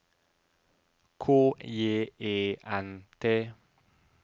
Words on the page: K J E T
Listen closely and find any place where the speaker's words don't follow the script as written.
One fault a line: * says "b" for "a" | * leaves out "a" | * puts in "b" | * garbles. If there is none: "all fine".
* puts in "N"